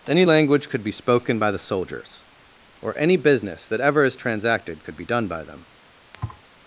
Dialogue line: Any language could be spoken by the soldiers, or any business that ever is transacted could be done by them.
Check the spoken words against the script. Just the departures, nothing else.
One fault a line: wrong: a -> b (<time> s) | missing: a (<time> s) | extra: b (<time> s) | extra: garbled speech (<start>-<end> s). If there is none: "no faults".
no faults